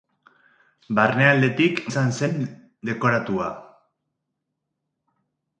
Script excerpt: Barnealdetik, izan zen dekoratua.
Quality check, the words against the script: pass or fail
pass